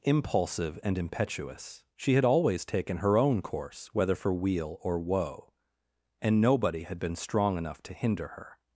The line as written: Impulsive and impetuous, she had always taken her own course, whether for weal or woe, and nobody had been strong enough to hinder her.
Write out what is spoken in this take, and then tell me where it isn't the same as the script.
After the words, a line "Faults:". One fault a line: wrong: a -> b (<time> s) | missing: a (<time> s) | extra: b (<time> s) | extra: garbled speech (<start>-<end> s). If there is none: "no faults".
Impulsive and impetuous, she had always taken her own course, whether for weal or woe, and nobody had been strong enough to hinder her.
Faults:
no faults